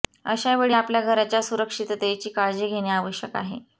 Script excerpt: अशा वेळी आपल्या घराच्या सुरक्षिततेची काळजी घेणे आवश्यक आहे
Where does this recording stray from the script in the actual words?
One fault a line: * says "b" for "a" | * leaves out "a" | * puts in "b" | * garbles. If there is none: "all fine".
all fine